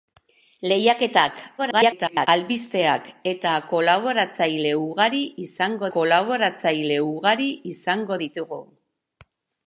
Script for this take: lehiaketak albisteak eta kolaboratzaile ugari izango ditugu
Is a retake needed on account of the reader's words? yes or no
yes